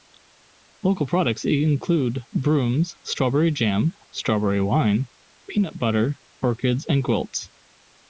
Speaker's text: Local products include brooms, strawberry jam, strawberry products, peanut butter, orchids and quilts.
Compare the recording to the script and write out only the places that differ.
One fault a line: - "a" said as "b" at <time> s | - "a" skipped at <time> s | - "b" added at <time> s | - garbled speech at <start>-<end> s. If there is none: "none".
- "products" said as "wine" at 4.6 s